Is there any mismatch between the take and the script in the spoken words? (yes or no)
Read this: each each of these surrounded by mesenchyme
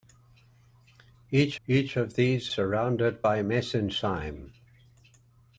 no